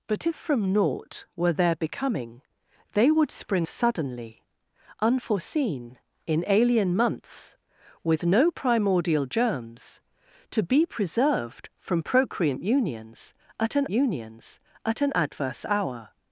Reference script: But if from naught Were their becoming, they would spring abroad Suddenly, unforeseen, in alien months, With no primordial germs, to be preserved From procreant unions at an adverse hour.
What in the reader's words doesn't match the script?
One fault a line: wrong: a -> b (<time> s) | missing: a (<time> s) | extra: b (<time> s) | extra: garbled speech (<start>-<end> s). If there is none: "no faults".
missing: abroad (3.7 s)
extra: unions at an (13.9 s)